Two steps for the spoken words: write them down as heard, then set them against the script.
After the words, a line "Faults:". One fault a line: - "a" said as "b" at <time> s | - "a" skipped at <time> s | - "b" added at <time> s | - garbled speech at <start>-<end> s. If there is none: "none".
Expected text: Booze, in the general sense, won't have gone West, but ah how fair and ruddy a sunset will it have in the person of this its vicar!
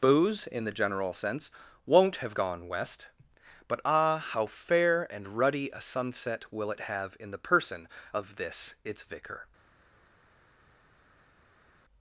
Booze, in the general sense, won't have gone West, but ah how fair and ruddy a sunset will it have in the person of this its vicar!
Faults:
none